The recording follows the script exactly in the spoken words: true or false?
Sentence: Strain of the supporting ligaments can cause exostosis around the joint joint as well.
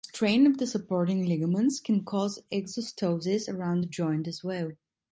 false